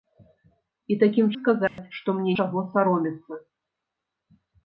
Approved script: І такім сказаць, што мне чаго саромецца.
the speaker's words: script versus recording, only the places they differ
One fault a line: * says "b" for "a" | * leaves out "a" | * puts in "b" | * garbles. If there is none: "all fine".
all fine